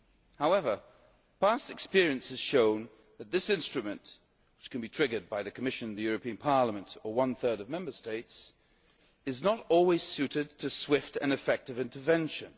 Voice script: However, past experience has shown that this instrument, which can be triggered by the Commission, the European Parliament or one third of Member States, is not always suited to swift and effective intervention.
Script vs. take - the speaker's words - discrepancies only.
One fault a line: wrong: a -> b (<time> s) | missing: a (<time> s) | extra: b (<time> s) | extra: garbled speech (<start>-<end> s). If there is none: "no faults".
no faults